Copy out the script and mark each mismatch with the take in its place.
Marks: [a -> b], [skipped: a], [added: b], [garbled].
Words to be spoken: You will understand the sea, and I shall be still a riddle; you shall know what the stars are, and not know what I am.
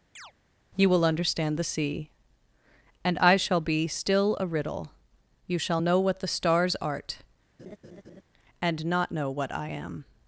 You will understand the sea, and I shall be still a riddle; you shall know what the stars [are, -> art] and not know what I am.